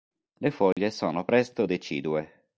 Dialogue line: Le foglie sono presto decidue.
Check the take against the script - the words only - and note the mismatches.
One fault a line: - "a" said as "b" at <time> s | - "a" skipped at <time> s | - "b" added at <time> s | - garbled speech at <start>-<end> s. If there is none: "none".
none